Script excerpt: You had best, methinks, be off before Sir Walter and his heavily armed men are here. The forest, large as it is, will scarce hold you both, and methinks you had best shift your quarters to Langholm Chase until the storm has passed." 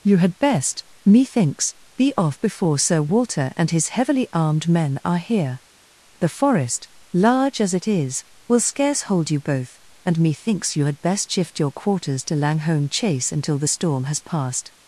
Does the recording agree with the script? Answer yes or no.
yes